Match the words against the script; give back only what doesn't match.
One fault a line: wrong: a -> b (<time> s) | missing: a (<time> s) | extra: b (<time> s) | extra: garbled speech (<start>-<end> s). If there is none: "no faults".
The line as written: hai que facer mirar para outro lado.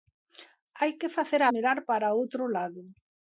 no faults